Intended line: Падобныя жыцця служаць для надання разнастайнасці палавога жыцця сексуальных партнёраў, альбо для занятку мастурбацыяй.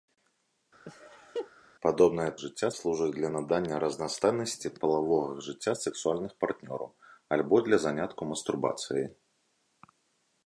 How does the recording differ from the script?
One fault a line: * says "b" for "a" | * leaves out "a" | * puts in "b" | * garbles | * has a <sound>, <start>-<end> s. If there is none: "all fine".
* has a laugh, 0.8-1.5 s